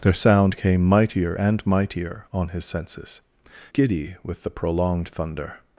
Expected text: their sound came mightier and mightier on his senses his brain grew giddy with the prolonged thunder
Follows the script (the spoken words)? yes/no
no